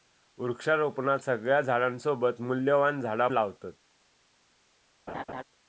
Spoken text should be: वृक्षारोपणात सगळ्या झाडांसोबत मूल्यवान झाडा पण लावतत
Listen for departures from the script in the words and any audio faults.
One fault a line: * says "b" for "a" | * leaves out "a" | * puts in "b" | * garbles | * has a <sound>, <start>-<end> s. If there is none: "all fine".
* leaves out "पण"
* has a laugh, 5.1-5.4 s